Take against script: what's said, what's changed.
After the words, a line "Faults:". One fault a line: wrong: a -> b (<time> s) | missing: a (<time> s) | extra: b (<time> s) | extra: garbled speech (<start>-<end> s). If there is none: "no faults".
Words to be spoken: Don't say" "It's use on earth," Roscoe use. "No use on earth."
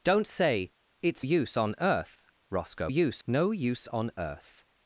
Don't say" "It's use on earth," Roscoe use. "No use on earth."
Faults:
no faults